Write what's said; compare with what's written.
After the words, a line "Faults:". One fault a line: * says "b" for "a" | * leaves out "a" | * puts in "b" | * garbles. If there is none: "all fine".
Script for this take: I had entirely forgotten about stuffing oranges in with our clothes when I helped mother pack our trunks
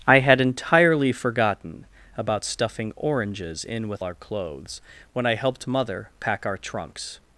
I had entirely forgotten about stuffing oranges in with our clothes when I helped mother pack our trunks
Faults:
all fine